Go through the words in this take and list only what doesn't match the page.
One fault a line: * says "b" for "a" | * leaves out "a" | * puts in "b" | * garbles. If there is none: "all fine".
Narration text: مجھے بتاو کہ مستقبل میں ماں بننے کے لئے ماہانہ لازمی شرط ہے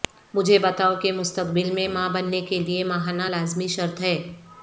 all fine